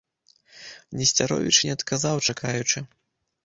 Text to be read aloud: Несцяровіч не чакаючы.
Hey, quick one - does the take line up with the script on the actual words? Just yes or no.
no